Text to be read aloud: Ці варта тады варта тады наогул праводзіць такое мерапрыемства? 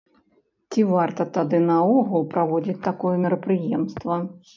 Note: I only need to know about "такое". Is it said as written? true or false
true